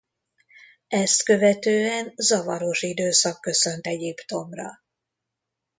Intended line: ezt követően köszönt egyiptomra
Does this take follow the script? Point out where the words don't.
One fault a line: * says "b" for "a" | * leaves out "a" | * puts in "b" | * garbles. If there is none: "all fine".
* puts in "zavaros időszak"